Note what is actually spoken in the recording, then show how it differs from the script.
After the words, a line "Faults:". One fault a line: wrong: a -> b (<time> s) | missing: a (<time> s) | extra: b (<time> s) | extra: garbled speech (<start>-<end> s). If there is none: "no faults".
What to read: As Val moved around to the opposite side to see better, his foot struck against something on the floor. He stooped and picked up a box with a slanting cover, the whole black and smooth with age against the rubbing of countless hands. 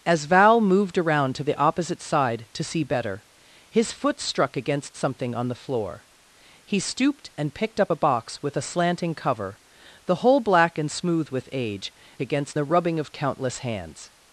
As Val moved around to the opposite side to see better, his foot struck against something on the floor. He stooped and picked up a box with a slanting cover, the whole black and smooth with age against the rubbing of countless hands.
Faults:
no faults